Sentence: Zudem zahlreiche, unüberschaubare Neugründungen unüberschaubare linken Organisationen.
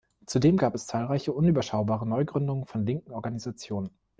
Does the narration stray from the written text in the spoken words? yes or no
yes